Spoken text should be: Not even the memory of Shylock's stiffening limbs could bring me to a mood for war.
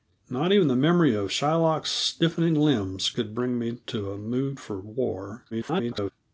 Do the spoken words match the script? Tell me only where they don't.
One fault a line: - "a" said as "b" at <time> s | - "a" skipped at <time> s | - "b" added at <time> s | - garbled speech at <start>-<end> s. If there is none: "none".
- garbled speech at 5.5-6.1 s